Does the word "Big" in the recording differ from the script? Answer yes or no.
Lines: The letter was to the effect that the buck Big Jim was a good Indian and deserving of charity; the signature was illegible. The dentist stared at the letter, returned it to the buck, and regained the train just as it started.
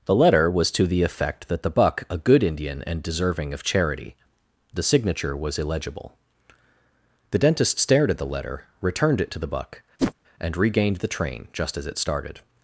yes